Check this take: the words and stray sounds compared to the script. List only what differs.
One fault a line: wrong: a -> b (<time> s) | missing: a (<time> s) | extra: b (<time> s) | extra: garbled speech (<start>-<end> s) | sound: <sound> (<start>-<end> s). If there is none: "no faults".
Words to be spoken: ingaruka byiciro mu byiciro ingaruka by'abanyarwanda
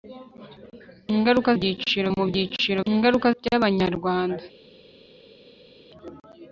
no faults